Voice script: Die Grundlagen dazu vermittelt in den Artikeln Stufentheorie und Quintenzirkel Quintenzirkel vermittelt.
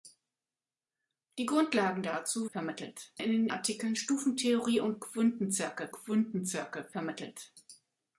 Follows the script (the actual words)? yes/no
yes